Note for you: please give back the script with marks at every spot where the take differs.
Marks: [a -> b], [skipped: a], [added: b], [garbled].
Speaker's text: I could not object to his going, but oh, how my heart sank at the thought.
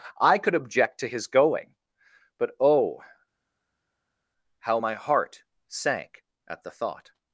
I could [skipped: not] object to his going, but oh, how my heart sank at the thought.